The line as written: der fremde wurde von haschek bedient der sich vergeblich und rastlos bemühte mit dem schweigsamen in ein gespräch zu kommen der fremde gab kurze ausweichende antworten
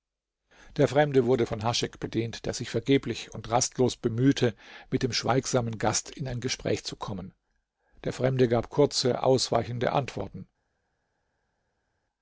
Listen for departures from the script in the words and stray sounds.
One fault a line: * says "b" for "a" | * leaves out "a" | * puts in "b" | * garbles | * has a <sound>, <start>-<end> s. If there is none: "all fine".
* puts in "gast"